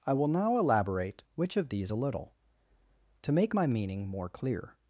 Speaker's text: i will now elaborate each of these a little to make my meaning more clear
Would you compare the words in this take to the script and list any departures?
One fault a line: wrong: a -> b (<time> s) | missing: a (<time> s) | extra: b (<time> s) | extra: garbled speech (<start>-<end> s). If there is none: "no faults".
wrong: each -> which (1.4 s)